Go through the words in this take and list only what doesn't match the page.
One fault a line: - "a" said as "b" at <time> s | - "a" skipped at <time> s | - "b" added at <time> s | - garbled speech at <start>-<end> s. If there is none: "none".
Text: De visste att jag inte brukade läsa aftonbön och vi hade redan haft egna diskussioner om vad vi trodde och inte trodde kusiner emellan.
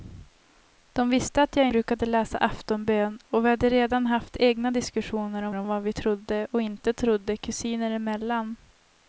- "inte" skipped at 1.7 s
- "om" added at 5.5 s